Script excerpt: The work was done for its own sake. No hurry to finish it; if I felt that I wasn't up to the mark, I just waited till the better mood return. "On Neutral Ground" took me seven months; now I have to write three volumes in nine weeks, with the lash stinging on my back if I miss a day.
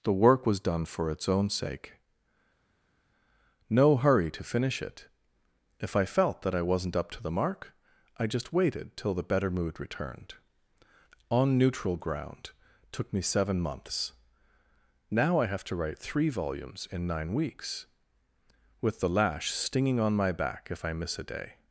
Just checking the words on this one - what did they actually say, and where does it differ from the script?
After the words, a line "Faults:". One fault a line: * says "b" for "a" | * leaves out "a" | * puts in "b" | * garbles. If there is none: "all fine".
The work was done for its own sake. No hurry to finish it; if I felt that I wasn't up to the mark, I just waited till the better mood returned. "On Neutral Ground" took me seven months; now I have to write three volumes in nine weeks, with the lash stinging on my back if I miss a day.
Faults:
* says "returned" for "return"